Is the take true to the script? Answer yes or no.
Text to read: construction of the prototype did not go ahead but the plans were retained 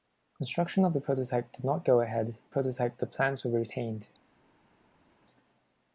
no